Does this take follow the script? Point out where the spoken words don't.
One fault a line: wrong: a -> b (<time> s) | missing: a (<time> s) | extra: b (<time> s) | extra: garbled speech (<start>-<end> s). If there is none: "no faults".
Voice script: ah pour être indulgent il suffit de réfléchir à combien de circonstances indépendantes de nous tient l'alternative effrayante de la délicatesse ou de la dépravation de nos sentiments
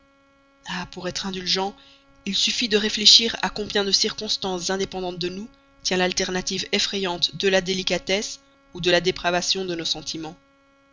no faults